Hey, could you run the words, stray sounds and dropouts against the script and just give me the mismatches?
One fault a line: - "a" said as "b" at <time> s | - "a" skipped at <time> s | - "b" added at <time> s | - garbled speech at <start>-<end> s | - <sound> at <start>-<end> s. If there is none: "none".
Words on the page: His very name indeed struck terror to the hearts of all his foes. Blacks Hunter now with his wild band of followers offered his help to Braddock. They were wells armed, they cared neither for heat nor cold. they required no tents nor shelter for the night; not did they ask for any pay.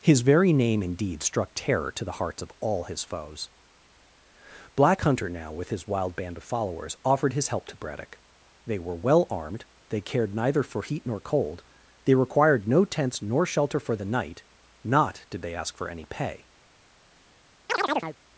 - "Blacks" said as "Black" at 4.8 s
- "wells" said as "well" at 8.9 s
- chirp at 17.7-18.2 s